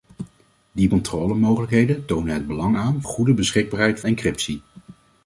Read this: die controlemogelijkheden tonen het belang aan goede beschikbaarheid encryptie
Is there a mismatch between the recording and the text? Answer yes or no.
no